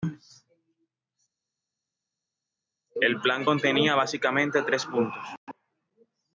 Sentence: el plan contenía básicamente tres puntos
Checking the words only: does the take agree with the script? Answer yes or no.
yes